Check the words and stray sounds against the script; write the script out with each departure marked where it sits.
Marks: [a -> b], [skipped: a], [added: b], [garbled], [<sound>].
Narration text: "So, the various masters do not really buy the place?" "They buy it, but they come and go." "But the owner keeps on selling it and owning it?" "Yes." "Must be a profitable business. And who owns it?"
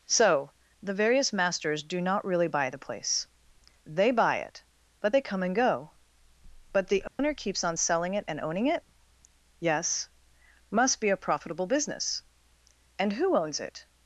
"So, the various masters do not really buy the place?" "They buy it, but they come and go." "But the owner [dropout] keeps on selling it and owning it?" "Yes." "Must be a profitable business. And who owns it?"